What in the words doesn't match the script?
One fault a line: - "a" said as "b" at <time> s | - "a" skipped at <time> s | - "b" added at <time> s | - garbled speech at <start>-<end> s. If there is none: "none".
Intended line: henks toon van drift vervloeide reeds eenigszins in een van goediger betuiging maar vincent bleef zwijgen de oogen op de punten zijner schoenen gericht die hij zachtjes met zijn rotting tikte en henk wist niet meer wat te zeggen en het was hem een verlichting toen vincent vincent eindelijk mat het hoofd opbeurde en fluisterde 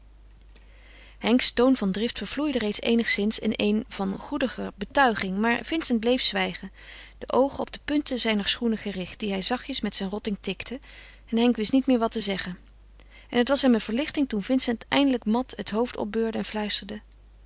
- "vincent" skipped at 14.8 s